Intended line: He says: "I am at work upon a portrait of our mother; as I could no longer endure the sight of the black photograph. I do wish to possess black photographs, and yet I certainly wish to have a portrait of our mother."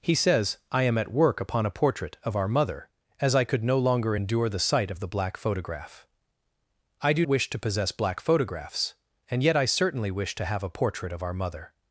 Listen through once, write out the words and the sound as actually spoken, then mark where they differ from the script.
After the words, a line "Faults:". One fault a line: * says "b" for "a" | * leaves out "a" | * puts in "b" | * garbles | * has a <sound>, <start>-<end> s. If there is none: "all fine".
He says: "I am at work upon a portrait of our mother; as I could no longer endure the sight of the black photograph. I do wish to possess black photographs, and yet I certainly wish to have a portrait of our mother."
Faults:
all fine